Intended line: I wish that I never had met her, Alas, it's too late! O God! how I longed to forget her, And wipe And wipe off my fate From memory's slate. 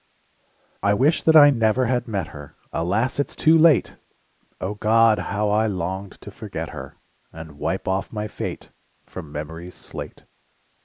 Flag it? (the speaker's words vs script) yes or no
yes